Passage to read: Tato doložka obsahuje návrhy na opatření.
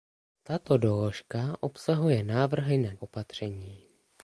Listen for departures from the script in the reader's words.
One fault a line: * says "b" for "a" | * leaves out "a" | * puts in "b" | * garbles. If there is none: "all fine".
all fine